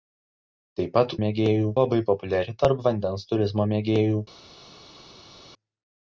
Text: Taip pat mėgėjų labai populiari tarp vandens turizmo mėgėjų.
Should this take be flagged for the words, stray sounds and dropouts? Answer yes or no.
no